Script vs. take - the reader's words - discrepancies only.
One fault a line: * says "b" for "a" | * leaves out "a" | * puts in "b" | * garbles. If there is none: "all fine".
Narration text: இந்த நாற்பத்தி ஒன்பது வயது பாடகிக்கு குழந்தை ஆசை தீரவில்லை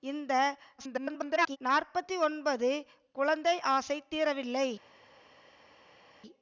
* garbles
* leaves out "வயது பாடகிக்கு"